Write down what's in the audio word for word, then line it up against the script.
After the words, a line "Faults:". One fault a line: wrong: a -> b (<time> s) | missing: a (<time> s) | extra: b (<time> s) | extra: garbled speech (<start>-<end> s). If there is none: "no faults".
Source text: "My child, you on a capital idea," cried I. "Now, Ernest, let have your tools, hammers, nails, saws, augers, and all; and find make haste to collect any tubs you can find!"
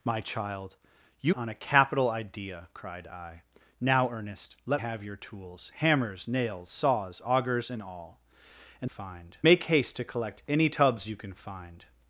"My child, you on a capital idea," cried I. "Now, Ernest, let have your tools, hammers, nails, saws, augers, and all; and find make haste to collect any tubs you can find!"
Faults:
no faults